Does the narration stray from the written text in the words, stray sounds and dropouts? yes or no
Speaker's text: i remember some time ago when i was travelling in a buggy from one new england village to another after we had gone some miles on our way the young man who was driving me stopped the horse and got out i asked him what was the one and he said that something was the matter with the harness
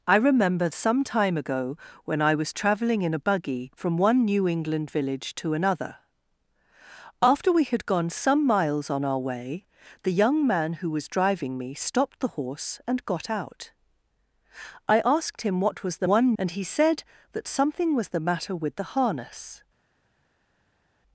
no